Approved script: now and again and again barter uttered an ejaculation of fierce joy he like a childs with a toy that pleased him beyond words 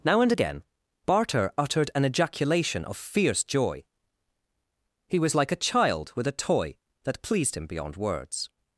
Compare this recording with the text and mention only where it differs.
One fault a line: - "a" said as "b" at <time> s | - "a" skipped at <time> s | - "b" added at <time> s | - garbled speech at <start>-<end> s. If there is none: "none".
- "and again" skipped at 0.6 s
- "was" added at 5.2 s
- "childs" said as "child" at 5.6 s